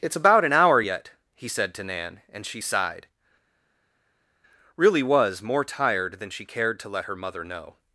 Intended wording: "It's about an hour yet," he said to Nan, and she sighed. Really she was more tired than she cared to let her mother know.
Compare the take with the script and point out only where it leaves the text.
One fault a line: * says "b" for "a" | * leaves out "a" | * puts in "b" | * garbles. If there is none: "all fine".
* leaves out "she"